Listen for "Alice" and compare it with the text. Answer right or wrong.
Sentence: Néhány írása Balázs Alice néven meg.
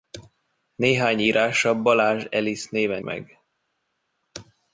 right